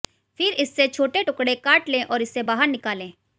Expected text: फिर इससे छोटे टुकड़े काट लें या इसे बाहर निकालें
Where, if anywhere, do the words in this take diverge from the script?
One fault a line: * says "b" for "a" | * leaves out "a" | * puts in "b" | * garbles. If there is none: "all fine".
* says "और" for "या"